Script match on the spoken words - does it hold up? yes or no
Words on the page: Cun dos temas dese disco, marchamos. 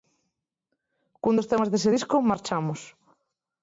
yes